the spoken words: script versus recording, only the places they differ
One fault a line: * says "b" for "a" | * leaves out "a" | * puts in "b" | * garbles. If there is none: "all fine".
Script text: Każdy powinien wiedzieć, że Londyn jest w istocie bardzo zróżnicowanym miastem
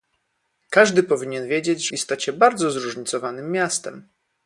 * leaves out "że Londyn jest"